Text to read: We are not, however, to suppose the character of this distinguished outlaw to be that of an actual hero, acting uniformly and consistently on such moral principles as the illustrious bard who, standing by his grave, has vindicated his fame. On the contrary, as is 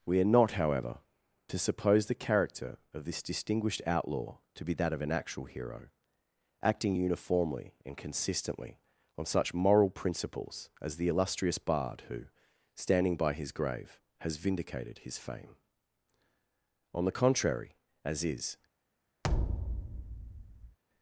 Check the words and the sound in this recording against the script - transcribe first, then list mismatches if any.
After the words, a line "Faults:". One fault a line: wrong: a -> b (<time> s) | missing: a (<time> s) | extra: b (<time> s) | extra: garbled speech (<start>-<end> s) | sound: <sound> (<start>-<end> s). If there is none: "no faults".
We are not, however, to suppose the character of this distinguished outlaw to be that of an actual hero, acting uniformly and consistently on such moral principles as the illustrious bard who, standing by his grave, has vindicated his fame. On the contrary, as is
Faults:
sound: thud (19.2-20.8 s)